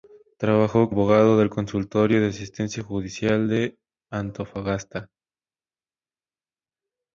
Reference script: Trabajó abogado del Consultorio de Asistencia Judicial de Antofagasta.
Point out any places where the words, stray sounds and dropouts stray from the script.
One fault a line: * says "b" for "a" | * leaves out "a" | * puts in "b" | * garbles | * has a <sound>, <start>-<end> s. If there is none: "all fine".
all fine